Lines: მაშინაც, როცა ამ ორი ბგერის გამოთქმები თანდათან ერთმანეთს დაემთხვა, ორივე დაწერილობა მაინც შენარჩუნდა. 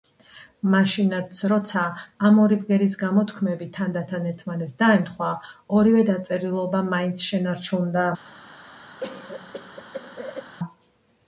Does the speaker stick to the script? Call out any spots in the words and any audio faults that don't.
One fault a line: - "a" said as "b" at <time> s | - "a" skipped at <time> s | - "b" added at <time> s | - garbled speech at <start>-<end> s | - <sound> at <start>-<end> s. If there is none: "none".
- cough at 9.0-10.6 s